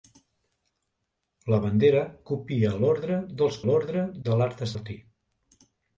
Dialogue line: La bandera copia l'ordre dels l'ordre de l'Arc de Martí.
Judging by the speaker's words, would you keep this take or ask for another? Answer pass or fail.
pass